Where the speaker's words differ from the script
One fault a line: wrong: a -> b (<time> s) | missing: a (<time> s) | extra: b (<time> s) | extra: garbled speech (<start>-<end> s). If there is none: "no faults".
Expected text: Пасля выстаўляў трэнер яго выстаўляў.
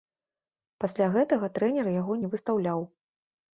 wrong: выстаўляў -> гэтага (1.2 s)
extra: не (2.2 s)